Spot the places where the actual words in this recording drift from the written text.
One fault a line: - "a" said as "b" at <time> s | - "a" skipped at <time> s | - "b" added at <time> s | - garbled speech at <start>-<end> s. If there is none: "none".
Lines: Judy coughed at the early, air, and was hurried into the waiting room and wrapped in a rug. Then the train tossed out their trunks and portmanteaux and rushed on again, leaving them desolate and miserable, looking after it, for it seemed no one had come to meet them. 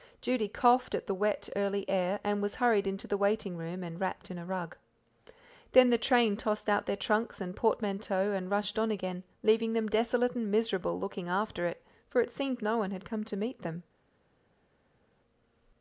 - "wet" added at 1.1 s